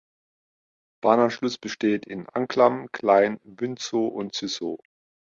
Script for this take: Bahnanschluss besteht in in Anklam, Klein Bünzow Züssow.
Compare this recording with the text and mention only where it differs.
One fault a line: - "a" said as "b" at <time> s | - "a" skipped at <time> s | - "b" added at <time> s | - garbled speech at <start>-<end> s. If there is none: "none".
- "in" skipped at 2.3 s
- "und" added at 4.0 s